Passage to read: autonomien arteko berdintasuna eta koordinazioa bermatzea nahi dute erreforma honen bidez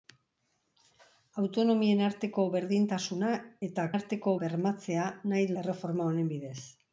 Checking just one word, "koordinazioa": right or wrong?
wrong